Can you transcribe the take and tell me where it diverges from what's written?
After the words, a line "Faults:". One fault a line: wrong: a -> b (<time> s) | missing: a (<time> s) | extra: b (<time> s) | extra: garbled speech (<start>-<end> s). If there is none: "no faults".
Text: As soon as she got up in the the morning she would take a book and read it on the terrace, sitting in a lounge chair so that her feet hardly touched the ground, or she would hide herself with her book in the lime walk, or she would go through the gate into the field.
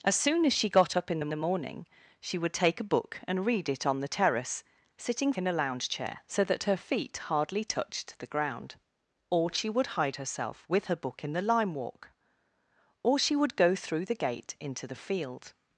As soon as she got up in the the morning she would take a book and read it on the terrace, sitting in a lounge chair so that her feet hardly touched the ground, or she would hide herself with her book in the lime walk, or she would go through the gate into the field.
Faults:
no faults